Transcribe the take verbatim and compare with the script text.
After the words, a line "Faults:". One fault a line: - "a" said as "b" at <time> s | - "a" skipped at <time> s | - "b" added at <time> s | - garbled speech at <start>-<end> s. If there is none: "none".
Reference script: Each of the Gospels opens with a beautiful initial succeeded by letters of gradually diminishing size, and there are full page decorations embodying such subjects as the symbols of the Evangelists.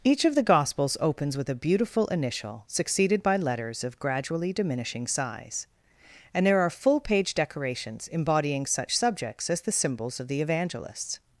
Each of the Gospels opens with a beautiful initial succeeded by letters of gradually diminishing size, and there are full page decorations embodying such subjects as the symbols of the Evangelists.
Faults:
none